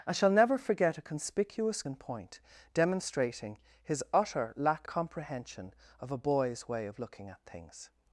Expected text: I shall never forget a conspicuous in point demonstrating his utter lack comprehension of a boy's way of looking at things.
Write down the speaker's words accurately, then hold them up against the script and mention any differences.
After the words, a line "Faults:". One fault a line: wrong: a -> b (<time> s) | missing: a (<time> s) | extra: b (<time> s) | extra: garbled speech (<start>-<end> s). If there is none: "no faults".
I shall never forget a conspicuous in point demonstrating his utter lack comprehension of a boy's way of looking at things.
Faults:
no faults